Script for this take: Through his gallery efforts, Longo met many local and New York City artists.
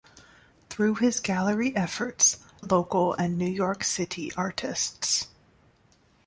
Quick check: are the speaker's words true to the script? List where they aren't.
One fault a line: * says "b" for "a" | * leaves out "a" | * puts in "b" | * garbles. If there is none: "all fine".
* leaves out "Longo met many"